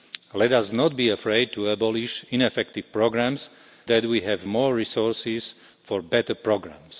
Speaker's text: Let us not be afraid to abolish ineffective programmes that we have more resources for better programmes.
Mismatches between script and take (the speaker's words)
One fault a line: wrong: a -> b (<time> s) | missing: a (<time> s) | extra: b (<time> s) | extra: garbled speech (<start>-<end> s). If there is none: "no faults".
no faults